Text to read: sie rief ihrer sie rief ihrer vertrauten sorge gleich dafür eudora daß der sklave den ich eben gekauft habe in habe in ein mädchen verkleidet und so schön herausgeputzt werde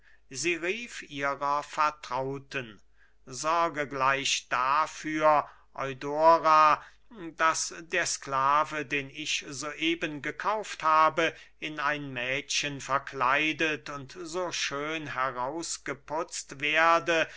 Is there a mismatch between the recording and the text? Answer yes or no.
yes